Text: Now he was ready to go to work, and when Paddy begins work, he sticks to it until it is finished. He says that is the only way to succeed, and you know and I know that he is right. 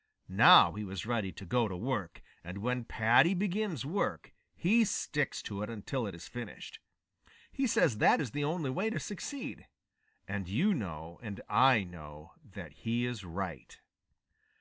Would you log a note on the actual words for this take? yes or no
no